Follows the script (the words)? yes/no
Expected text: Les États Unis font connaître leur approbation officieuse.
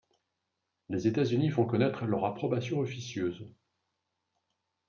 yes